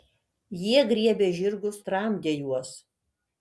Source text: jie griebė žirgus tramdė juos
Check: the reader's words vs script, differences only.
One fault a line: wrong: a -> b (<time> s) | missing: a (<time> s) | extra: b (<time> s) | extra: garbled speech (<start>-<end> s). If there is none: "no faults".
no faults